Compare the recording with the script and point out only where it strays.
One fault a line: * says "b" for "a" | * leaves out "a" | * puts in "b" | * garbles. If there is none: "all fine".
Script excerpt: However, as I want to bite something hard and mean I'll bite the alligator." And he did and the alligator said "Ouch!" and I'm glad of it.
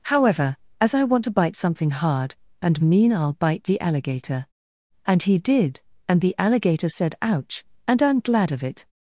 all fine